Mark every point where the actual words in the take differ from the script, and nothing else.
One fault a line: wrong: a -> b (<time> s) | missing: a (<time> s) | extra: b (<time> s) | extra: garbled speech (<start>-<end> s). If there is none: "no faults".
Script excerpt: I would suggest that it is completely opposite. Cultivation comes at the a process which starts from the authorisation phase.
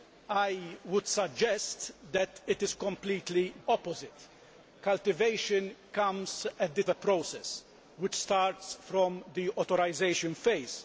no faults